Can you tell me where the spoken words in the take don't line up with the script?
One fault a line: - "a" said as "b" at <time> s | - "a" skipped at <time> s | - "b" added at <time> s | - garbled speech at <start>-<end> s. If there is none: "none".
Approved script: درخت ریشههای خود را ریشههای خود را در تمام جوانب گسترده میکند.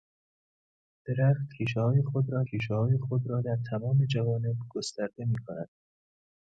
none